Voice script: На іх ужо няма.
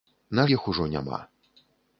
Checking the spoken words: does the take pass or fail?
pass